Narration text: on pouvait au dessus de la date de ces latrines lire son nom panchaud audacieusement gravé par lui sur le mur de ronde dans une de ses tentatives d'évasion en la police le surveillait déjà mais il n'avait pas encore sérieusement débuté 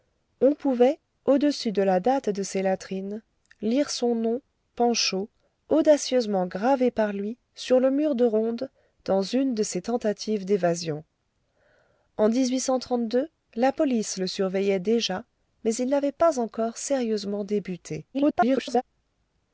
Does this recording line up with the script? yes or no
no